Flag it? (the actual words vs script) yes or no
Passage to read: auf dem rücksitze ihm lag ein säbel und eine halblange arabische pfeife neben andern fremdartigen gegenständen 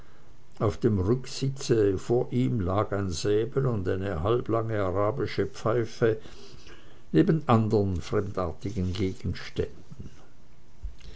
yes